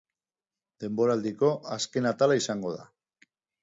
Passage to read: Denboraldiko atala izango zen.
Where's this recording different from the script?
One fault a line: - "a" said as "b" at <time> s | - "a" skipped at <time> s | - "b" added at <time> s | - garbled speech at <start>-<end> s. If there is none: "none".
- "azken" added at 1.8 s
- "zen" said as "da" at 2.8 s